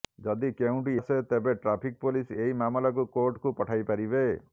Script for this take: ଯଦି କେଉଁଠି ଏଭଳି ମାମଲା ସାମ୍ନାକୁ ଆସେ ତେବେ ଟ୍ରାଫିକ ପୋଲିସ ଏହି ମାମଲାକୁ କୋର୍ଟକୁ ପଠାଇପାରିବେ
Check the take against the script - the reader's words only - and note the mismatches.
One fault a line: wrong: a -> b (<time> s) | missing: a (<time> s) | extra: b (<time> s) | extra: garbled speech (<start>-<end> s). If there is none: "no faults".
missing: ଏଭଳି ମାମଲା ସାମ୍ନାକୁ (0.9 s)